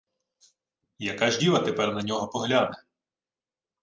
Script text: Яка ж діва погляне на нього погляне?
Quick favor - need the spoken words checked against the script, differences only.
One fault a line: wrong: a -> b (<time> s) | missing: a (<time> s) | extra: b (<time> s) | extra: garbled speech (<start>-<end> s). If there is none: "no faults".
wrong: погляне -> тепер (1.6 s)